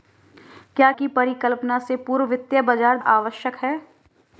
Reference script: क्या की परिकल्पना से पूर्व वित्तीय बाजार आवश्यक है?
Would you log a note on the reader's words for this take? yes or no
no